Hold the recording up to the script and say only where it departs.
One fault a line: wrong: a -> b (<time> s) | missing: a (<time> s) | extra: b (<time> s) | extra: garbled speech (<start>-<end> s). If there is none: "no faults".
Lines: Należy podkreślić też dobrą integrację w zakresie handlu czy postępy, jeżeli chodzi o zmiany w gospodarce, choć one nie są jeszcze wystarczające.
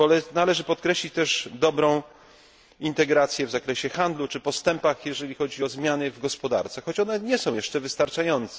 no faults